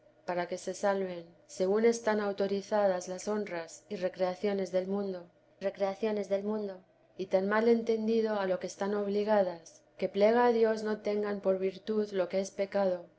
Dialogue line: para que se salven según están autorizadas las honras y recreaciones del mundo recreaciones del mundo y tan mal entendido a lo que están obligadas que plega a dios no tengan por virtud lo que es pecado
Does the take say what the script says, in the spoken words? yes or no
yes